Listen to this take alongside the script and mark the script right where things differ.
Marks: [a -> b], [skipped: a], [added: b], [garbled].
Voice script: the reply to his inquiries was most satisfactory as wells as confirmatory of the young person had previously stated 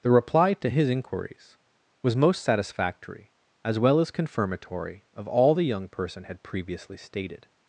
the reply to his inquiries was most satisfactory as [wells -> well] as confirmatory of [added: all] the young person had previously stated